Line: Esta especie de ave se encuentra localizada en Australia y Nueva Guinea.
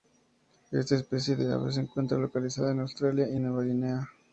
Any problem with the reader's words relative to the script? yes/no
no